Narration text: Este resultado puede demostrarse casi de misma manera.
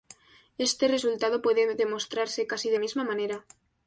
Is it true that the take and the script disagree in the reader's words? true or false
false